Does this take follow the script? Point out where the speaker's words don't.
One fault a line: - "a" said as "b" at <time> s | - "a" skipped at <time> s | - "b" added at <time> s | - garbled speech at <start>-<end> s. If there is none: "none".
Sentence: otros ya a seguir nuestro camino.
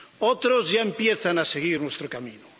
- "empiezan" added at 0.8 s